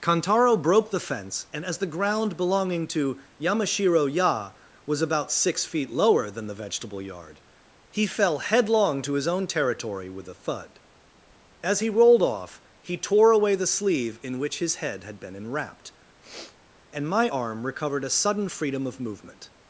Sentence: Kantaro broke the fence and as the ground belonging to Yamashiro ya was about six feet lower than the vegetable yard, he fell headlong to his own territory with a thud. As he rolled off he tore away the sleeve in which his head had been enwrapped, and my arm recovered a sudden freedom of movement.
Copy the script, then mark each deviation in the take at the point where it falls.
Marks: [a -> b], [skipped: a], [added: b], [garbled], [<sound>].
Kantaro broke the fence and as the ground belonging to Yamashiro ya was about six feet lower than the vegetable yard, he fell headlong to his own territory with a thud. As he rolled off he tore away the sleeve in which his head had been enwrapped, [sniff] and my arm recovered a sudden freedom of movement.